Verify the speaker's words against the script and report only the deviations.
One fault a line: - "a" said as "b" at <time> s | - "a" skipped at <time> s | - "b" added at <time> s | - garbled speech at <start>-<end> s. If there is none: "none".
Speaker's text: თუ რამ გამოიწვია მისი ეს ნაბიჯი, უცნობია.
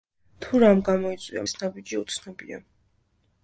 - "მისი" skipped at 1.4 s